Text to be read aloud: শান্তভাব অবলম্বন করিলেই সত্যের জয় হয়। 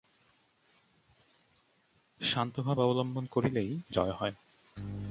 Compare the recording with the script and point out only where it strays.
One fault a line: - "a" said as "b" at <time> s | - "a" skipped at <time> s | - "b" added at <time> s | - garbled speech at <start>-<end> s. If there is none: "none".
- "সত্যের" skipped at 3.7 s